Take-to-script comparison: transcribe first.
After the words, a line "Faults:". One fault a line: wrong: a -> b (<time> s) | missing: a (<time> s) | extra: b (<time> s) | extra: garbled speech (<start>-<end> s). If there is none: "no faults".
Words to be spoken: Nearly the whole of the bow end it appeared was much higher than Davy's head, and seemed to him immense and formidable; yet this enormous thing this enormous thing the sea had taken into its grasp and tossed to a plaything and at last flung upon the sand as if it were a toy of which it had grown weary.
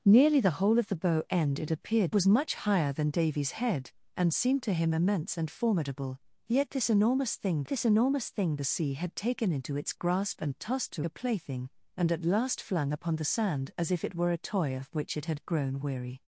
Nearly the whole of the bow end it appeared was much higher than Davy's head, and seemed to him immense and formidable; yet this enormous thing this enormous thing the sea had taken into its grasp and tossed to a plaything and at last flung upon the sand as if it were a toy of which it had grown weary.
Faults:
no faults